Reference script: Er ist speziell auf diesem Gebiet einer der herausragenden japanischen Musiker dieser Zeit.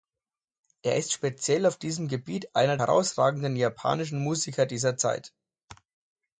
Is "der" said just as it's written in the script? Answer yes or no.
no